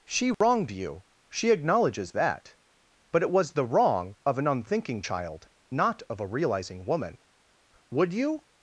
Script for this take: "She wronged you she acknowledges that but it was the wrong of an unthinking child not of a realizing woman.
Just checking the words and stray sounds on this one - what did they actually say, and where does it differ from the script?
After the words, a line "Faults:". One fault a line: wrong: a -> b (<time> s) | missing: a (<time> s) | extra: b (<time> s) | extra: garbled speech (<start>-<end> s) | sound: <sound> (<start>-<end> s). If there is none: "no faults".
"She wronged you she acknowledges that but it was the wrong of an unthinking child not of a realizing woman. Would you
Faults:
sound: dropout (0.3-0.4 s)
extra: Would you (7.9 s)